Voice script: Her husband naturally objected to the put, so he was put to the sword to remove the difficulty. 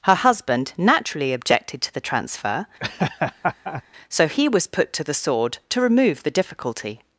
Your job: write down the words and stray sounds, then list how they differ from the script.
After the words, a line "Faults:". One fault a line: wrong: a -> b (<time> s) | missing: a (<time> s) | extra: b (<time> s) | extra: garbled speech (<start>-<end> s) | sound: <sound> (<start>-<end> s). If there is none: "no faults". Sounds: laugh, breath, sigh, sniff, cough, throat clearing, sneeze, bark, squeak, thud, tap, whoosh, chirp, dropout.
Her husband naturally objected to the transfer, so he was put to the sword to remove the difficulty.
Faults:
wrong: put -> transfer (2.0 s)
sound: laugh (2.8-3.8 s)